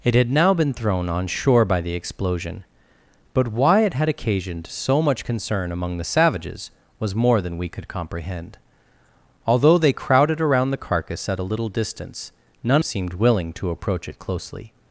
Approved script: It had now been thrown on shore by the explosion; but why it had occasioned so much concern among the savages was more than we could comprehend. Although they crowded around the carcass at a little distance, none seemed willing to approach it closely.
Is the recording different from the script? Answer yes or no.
no